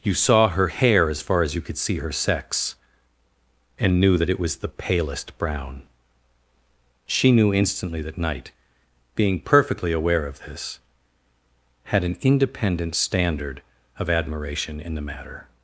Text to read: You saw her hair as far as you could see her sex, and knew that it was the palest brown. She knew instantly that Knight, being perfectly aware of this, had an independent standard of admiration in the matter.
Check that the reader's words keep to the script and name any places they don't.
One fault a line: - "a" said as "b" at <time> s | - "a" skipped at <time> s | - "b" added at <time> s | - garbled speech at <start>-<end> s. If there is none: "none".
none